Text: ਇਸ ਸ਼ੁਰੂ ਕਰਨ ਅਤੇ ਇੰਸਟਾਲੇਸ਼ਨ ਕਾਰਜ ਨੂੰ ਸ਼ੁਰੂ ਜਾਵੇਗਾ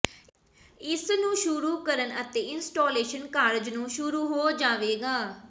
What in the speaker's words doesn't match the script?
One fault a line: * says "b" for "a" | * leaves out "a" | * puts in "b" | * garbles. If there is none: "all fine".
* puts in "ਨੂੰ"
* puts in "ਹੋ"